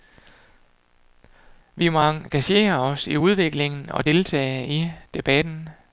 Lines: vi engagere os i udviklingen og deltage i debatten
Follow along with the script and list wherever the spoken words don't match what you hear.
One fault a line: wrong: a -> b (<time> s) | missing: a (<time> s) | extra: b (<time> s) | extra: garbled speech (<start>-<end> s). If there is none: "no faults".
extra: må (1.9 s)